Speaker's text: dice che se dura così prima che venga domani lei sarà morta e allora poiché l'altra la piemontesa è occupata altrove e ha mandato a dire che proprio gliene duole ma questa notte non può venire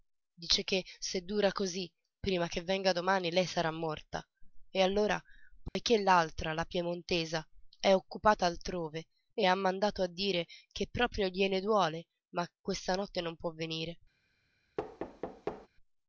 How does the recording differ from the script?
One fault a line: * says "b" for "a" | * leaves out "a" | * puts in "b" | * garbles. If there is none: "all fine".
all fine